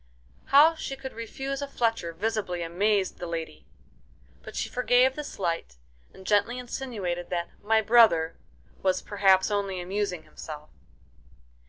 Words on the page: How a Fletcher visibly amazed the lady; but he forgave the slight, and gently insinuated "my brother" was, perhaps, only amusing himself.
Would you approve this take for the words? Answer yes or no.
no